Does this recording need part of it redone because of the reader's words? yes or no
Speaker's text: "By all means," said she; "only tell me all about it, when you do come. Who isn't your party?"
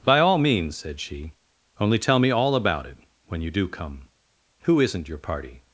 no